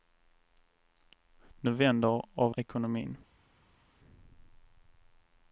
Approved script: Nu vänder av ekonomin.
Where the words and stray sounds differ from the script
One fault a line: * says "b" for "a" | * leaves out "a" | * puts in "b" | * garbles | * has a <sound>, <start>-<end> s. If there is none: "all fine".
all fine